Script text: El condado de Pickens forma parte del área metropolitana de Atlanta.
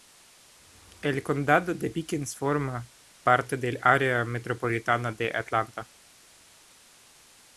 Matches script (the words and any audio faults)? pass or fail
pass